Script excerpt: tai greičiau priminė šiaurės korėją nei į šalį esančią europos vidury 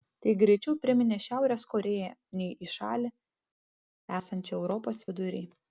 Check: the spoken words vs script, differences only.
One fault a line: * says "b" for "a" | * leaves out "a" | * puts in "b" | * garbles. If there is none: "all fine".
all fine